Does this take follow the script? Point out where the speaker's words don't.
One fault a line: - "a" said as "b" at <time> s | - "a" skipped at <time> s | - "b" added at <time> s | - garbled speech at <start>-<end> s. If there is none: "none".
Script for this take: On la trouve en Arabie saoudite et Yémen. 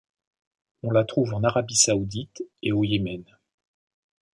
- "au" added at 2.7 s